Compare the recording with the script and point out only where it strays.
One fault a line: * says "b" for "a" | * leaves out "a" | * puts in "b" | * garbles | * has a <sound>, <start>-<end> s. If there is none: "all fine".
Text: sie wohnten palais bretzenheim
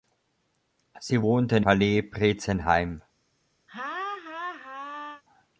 * has a laugh, 3.7-5.2 s